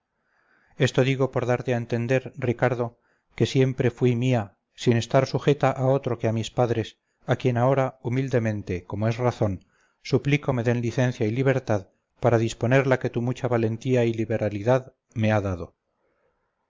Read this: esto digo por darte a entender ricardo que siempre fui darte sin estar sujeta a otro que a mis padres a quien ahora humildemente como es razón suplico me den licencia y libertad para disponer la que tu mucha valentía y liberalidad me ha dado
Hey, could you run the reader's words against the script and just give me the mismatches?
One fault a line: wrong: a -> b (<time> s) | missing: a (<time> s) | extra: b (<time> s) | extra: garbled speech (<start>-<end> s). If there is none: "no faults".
wrong: darte -> mía (4.2 s)